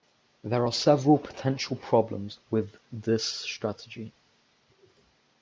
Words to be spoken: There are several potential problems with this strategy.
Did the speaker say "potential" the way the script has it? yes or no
yes